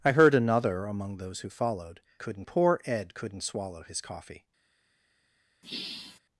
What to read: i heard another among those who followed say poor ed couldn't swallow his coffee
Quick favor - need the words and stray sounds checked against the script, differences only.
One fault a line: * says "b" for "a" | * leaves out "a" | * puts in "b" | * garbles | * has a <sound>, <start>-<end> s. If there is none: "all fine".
* says "couldn't" for "say"
* has a sigh, 5.6-6.2 s